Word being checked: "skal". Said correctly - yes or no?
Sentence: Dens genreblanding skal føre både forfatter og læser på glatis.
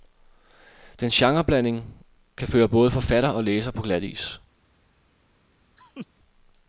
no